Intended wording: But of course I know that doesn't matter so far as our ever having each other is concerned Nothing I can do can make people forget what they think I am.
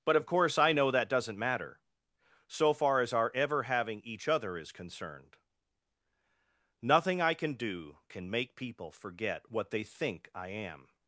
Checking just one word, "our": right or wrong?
right